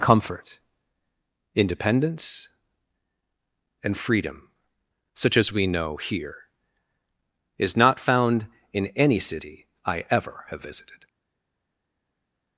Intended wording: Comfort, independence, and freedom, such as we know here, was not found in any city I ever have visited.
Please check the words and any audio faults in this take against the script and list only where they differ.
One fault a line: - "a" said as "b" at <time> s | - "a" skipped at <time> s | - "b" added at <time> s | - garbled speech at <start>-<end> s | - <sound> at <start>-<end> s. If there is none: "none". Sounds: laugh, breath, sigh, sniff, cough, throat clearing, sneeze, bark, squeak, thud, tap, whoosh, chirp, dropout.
- "was" said as "is" at 7.6 s